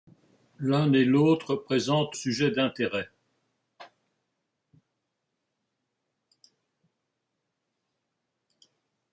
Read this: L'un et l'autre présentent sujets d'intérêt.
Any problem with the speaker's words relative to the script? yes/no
no